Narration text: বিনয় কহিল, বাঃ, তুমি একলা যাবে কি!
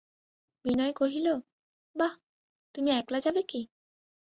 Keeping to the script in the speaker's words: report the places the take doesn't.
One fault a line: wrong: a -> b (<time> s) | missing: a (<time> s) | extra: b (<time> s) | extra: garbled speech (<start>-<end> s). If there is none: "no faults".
no faults